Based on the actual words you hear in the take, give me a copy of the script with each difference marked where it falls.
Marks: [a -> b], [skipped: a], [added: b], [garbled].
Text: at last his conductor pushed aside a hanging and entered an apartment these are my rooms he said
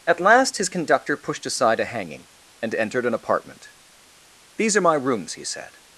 at last his conductor pushed aside a hanging and entered an apartment these are my rooms he said